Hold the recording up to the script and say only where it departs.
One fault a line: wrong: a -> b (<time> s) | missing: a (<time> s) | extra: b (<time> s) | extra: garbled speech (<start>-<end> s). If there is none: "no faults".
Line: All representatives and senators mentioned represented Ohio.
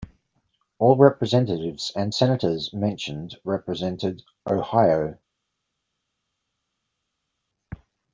no faults